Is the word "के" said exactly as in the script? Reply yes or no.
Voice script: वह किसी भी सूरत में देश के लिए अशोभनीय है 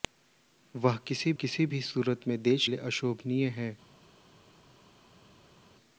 no